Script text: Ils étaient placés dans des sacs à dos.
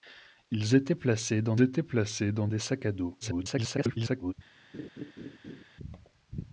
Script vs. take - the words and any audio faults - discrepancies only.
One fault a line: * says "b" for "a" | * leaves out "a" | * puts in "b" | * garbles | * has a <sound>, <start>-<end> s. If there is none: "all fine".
* puts in "étaient placés dans"
* garbles
* has a laugh, 4.7-5.6 s